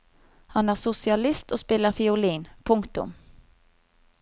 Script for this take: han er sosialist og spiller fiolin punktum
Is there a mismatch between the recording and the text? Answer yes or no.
no